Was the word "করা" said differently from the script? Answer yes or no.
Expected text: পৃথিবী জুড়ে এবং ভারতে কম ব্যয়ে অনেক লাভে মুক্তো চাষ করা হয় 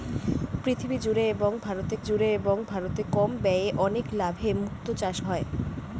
yes